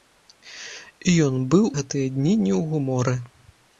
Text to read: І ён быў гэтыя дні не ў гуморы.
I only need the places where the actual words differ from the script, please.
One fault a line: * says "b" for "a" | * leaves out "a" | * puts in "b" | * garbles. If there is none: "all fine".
all fine